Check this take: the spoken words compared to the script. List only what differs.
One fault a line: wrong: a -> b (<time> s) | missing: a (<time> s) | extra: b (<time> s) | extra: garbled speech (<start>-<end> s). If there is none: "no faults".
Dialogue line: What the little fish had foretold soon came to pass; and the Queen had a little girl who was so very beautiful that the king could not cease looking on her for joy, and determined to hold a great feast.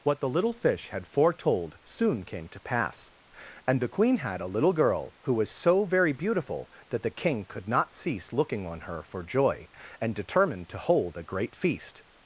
no faults